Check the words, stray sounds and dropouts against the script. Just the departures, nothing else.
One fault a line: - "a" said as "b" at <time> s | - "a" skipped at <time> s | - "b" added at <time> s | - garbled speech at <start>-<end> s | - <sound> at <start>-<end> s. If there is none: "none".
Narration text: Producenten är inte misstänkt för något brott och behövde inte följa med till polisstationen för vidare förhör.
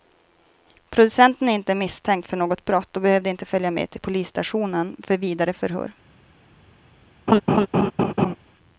- laugh at 7.3-8.4 s